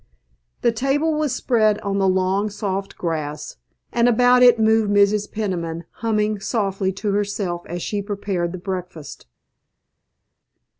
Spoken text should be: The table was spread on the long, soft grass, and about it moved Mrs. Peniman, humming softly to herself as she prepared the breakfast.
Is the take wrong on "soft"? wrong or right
right